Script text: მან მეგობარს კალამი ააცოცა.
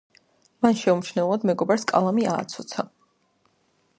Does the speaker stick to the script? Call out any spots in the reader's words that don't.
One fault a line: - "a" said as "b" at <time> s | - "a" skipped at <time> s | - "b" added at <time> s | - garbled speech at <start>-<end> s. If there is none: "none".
- "შეუმჩნევლად" added at 0.8 s